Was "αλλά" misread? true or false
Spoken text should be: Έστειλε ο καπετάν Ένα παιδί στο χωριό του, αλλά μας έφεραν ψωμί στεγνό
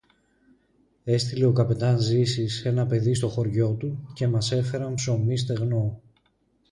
true